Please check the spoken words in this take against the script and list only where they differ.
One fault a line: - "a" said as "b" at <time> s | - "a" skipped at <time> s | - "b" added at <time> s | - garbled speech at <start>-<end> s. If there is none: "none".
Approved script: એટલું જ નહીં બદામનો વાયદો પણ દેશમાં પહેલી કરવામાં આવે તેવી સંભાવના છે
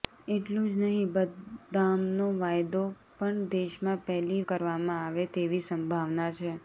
none